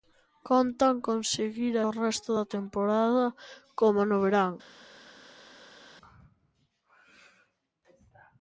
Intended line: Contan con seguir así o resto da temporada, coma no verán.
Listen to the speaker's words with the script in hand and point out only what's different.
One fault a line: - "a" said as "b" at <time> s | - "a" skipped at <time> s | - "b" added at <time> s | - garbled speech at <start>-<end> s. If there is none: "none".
- "así" skipped at 1.8 s